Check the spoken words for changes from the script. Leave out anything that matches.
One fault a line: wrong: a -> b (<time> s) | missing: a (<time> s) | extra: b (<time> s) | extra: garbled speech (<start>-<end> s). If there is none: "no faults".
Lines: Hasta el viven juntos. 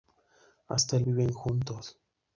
no faults